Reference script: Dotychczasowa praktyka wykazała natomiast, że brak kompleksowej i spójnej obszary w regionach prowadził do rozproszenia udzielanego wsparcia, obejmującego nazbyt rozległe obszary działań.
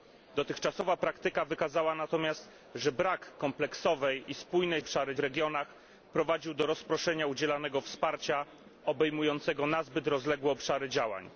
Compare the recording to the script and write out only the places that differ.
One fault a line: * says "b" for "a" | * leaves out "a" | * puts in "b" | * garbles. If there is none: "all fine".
all fine